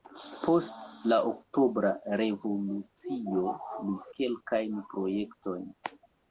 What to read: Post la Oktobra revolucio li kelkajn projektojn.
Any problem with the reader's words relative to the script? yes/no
no